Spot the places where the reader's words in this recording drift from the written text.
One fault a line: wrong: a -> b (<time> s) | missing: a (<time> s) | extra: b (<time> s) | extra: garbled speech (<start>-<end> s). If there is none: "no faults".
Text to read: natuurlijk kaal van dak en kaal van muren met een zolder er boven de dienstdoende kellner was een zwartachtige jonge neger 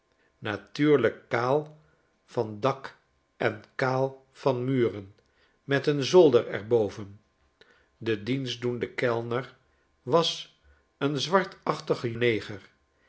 missing: jonge (12.1 s)